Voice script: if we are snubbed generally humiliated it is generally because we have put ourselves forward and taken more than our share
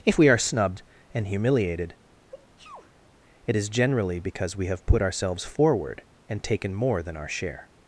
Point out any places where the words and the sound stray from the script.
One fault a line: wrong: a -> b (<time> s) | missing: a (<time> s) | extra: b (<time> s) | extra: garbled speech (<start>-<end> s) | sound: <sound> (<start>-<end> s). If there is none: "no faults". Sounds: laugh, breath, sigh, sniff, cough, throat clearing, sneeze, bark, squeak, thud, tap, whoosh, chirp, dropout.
wrong: generally -> and (1.1 s)
sound: sneeze (2.3-3.1 s)